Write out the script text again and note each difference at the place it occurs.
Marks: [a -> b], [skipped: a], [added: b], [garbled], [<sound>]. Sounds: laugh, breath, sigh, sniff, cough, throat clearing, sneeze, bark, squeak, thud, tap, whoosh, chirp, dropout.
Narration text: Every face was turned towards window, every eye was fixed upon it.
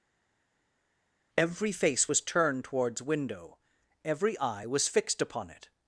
Every face was turned towards window, every eye was fixed upon it.